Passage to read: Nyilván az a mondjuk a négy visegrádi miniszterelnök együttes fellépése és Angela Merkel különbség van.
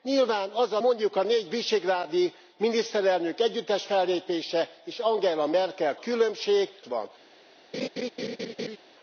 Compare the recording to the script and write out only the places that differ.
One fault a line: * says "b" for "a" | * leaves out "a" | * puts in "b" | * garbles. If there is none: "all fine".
all fine